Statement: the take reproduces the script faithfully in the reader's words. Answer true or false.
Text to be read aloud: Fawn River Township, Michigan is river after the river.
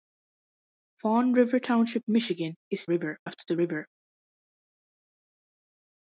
true